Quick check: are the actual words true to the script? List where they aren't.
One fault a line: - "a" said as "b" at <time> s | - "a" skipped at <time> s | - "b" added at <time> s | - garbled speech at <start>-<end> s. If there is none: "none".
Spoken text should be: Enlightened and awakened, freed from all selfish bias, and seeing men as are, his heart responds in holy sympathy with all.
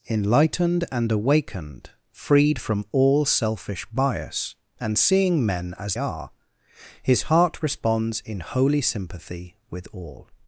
none